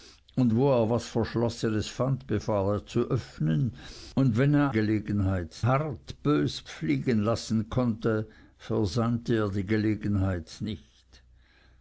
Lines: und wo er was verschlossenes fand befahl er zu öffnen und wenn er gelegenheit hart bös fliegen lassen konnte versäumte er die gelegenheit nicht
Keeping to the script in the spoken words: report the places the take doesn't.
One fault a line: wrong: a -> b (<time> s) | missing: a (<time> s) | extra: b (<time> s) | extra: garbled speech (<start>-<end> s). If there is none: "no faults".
no faults